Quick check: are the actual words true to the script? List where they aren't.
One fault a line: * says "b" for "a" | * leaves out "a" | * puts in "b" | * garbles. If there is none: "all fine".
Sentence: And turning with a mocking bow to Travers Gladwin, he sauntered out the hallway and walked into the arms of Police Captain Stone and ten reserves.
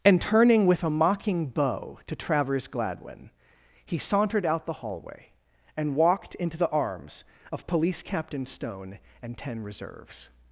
all fine